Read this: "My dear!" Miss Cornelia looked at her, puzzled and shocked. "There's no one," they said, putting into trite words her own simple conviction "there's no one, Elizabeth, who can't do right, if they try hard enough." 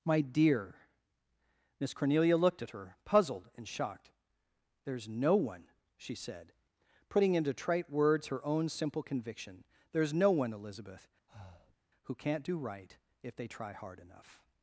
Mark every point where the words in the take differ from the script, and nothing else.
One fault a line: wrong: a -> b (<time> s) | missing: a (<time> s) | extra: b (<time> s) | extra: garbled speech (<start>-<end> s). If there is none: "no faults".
wrong: they -> she (6.0 s)